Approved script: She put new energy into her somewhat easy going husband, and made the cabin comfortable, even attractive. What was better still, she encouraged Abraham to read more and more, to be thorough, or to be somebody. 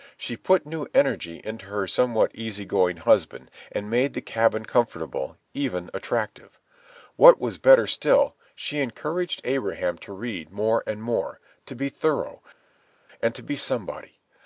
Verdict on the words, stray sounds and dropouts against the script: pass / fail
fail